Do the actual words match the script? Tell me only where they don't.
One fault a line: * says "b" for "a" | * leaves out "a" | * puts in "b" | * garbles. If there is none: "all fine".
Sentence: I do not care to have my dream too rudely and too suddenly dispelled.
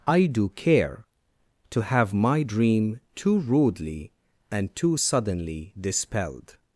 * leaves out "not"